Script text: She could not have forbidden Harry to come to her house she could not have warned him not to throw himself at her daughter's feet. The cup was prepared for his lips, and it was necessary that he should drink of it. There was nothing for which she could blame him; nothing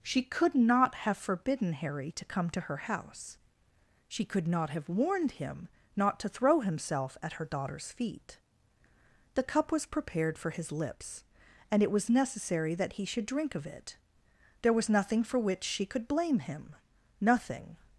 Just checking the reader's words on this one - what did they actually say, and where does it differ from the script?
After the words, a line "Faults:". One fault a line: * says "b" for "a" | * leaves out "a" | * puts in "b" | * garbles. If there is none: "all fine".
She could not have forbidden Harry to come to her house she could not have warned him not to throw himself at her daughter's feet. The cup was prepared for his lips, and it was necessary that he should drink of it. There was nothing for which she could blame him; nothing
Faults:
all fine